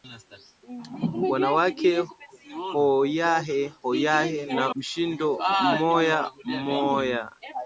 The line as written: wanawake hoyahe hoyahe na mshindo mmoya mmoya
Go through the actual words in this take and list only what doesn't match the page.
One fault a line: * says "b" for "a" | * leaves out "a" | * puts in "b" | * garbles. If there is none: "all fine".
all fine